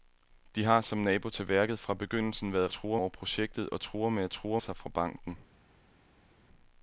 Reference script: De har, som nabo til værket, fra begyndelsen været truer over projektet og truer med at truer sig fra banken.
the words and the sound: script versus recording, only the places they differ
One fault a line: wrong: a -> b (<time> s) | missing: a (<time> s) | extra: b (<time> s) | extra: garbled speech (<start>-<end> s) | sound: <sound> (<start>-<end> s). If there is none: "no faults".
no faults